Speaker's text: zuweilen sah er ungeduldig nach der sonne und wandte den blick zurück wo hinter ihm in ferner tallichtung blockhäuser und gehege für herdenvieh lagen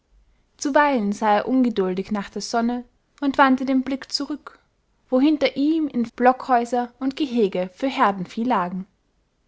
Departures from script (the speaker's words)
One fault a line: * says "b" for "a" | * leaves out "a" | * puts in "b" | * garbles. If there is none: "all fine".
* leaves out "ferner tallichtung"